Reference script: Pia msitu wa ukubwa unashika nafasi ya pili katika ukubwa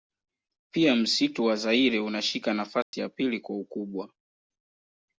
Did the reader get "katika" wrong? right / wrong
wrong